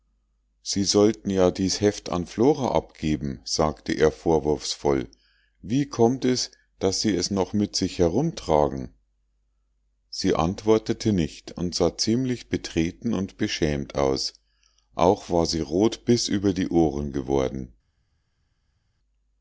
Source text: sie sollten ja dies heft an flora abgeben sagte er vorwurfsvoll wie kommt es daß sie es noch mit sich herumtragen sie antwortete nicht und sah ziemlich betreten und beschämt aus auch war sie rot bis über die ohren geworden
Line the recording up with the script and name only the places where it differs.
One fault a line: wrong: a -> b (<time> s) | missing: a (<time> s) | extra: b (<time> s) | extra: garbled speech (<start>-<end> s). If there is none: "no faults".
no faults